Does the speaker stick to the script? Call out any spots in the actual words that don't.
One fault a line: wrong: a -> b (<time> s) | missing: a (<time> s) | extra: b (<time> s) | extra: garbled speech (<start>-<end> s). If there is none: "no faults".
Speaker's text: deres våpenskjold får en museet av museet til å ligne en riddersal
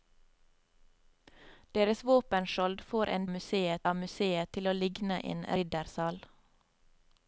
no faults